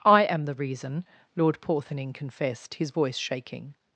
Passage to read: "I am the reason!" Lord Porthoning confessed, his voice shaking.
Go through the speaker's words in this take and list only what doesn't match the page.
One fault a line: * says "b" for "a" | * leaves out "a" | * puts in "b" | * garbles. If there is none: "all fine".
all fine